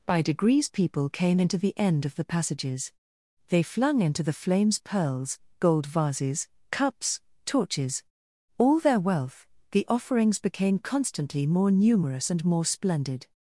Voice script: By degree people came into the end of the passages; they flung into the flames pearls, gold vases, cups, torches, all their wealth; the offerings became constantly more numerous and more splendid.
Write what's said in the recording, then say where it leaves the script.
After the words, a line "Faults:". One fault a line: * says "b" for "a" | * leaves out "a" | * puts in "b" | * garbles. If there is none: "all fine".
By degrees people came into the end of the passages; they flung into the flames pearls, gold vases, cups, torches, all their wealth; the offerings became constantly more numerous and more splendid.
Faults:
* says "degrees" for "degree"